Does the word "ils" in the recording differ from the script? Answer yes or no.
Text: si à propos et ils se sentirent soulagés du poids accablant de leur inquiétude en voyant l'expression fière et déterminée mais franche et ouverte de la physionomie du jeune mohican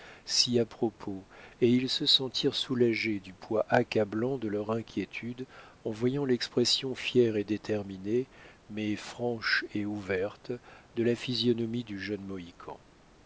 no